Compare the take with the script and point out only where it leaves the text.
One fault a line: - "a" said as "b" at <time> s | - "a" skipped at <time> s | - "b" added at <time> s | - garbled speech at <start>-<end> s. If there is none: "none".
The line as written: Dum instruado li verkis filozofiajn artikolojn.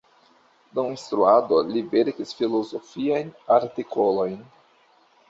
none